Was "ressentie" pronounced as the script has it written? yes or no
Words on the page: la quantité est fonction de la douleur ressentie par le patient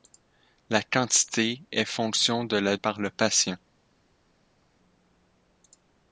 no